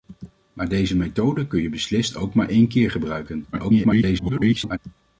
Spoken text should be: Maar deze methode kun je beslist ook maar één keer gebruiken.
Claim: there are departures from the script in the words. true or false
true